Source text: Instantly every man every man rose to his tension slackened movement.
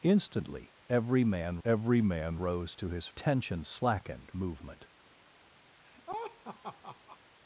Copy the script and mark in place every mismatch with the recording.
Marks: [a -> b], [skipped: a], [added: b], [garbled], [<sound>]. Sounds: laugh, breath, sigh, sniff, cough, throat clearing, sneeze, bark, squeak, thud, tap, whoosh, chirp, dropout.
Instantly every man every man rose to his tension slackened movement. [laugh]